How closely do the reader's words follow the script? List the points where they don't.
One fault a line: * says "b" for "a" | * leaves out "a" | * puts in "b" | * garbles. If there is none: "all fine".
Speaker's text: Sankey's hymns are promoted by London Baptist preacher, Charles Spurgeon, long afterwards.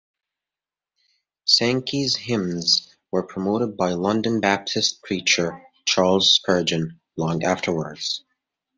* says "were" for "are"